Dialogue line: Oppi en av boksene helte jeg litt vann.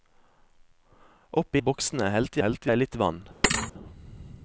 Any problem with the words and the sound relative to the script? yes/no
yes